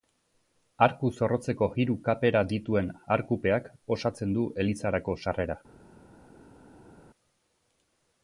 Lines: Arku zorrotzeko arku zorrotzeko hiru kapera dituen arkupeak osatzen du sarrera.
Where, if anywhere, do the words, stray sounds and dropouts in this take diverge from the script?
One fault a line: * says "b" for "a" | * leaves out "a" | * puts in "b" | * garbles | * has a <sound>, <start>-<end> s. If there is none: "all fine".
* leaves out "arku zorrotzeko"
* puts in "elizarako"